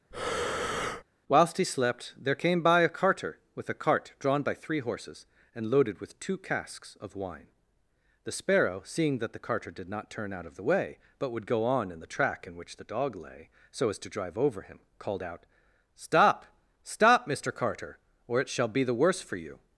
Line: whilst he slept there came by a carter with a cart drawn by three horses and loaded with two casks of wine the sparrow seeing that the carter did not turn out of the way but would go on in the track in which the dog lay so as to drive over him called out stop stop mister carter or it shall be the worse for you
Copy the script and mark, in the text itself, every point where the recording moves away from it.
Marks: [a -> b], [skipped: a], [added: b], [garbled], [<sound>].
[breath] whilst he slept there came by a carter with a cart drawn by three horses and loaded with two casks of wine the sparrow seeing that the carter did not turn out of the way but would go on in the track in which the dog lay so as to drive over him called out stop stop mister carter or it shall be the worse for you